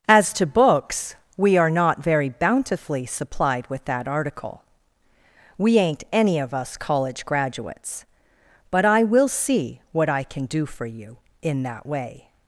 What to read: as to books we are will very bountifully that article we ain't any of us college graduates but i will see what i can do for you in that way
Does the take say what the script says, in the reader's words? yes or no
no